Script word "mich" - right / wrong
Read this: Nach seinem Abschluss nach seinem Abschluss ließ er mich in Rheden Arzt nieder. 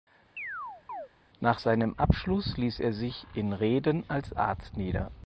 wrong